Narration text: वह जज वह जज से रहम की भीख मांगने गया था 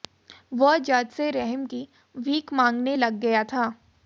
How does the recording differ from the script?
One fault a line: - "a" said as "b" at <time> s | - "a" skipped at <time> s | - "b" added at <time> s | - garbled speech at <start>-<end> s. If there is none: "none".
- "वह जज" skipped at 1.1 s
- "लग" added at 2.9 s